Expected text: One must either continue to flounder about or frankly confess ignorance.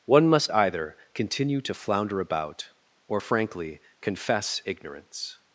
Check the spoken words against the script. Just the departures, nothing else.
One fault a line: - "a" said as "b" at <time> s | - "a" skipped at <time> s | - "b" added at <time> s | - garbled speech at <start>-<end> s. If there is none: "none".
none